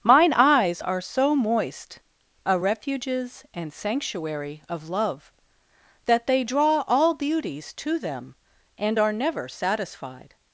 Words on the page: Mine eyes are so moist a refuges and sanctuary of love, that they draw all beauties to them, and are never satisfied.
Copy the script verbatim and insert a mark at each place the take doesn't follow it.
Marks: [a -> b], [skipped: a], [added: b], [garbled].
Mine eyes are so moist a refuges and sanctuary of love, that they draw all beauties to them, and are never satisfied.